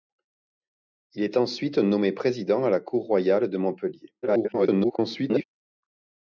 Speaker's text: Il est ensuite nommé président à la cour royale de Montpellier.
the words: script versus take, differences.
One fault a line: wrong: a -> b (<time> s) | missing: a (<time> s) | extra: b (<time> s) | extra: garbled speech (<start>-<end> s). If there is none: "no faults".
extra: garbled speech (4.2-5.4 s)